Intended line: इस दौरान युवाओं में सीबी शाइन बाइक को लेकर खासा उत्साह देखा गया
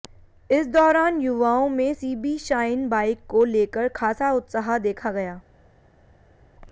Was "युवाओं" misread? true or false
false